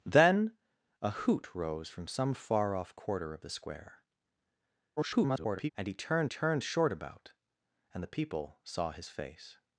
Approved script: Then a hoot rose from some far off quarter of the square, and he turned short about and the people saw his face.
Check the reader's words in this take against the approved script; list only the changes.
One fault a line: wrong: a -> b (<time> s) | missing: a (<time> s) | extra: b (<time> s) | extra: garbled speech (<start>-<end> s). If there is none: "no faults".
extra: garbled speech (5.0-5.7 s)
extra: turned (6.2 s)